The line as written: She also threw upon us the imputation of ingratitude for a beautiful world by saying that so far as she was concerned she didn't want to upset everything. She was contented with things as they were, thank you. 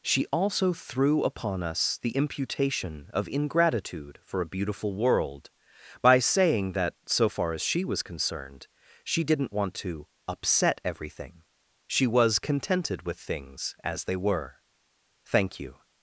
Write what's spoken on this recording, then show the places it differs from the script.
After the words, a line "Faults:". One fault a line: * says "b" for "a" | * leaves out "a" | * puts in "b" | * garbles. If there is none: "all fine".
She also threw upon us the imputation of ingratitude for a beautiful world by saying that so far as she was concerned she didn't want to upset everything. She was contented with things as they were, thank you.
Faults:
all fine